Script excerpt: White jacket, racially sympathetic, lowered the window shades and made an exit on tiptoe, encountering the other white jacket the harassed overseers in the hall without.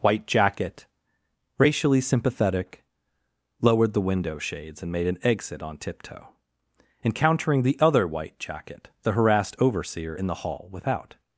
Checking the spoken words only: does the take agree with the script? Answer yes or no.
no